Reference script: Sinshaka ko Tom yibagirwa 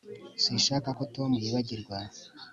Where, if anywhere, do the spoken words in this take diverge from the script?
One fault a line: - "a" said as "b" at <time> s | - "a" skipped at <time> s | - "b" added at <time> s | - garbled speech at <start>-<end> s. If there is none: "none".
none